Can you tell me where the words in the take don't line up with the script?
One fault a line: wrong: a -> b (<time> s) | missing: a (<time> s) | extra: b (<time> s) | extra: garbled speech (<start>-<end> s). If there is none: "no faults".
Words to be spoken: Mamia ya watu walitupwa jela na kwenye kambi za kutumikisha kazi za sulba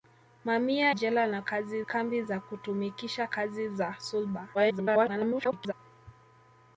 missing: ya watu walitupwa (0.9 s)
wrong: kwenye -> kazi (1.4 s)
extra: garbled speech (4.5-5.7 s)